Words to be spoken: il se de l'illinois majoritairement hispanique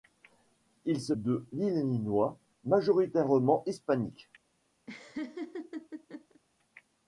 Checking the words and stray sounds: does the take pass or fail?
fail